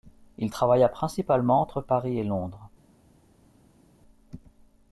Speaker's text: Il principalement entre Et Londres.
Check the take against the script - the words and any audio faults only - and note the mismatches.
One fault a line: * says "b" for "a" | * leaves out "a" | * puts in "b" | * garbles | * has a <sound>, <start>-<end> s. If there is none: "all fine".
* puts in "travailla"
* puts in "Paris"